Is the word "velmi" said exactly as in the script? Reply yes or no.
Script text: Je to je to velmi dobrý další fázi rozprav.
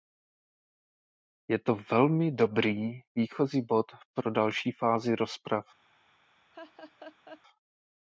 no